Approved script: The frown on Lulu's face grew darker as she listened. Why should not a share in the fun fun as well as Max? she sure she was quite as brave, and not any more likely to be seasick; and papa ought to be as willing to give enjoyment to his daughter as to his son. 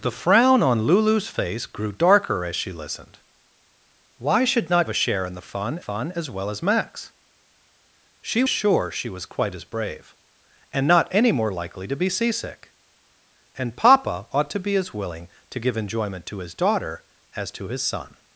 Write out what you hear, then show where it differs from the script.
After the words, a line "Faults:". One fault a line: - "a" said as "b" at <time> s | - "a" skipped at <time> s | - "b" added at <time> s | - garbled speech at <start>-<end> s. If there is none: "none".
The frown on Lulu's face grew darker as she listened. Why should not a share in the fun fun as well as Max? she sure she was quite as brave, and not any more likely to be seasick; and papa ought to be as willing to give enjoyment to his daughter as to his son.
Faults:
none